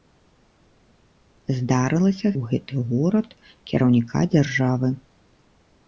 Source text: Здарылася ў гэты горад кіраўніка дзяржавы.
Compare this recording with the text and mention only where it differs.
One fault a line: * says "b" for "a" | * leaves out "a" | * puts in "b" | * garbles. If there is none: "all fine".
all fine